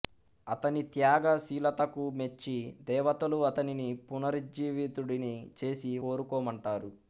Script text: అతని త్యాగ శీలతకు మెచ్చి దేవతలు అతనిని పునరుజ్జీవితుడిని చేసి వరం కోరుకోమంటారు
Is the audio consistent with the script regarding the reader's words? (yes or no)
no